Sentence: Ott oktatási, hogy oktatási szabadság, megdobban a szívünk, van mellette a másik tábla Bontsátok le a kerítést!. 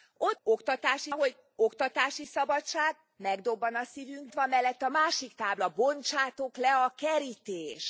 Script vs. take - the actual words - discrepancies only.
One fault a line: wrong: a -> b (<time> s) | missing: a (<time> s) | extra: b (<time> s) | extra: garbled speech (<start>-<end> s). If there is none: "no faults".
no faults